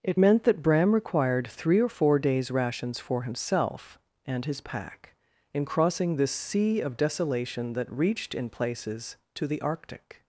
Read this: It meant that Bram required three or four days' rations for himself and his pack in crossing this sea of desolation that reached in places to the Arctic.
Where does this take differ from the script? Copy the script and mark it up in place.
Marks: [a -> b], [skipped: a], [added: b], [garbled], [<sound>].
It meant that Bram required three or four days' rations for himself and his pack in crossing this sea of desolation that reached in places to the Arctic.